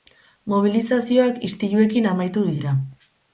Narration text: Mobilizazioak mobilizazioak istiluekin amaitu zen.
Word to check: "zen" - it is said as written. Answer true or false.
false